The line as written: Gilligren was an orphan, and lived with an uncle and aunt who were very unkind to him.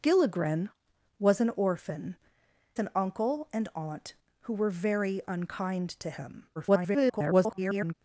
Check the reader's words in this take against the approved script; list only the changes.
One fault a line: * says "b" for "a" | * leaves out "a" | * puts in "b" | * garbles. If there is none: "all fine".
* leaves out "and lived with"
* garbles